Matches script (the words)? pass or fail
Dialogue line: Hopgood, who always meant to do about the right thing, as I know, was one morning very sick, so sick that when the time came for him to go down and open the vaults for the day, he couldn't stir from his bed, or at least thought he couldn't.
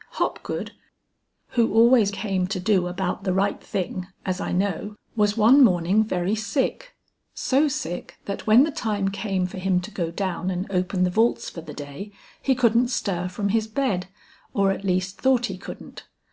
fail